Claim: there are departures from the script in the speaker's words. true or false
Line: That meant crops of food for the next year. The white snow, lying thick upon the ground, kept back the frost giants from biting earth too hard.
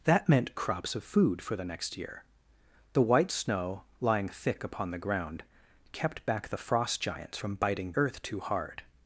false